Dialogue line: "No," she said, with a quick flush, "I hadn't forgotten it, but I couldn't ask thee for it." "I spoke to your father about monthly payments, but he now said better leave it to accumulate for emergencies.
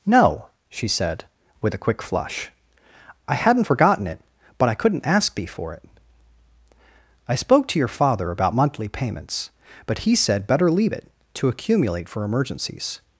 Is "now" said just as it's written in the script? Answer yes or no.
no